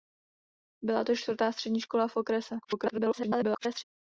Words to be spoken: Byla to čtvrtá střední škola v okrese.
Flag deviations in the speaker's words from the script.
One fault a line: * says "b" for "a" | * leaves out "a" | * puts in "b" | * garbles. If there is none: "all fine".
* garbles